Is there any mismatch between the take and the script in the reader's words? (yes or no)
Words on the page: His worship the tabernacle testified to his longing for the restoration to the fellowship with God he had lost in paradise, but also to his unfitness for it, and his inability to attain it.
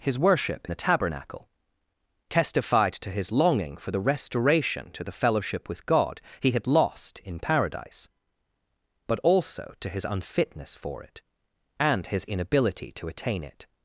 no